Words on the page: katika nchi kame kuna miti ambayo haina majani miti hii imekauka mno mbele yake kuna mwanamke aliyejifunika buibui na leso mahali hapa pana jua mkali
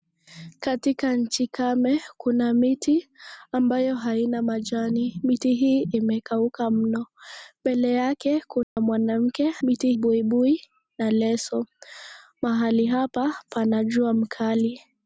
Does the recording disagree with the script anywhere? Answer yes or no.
yes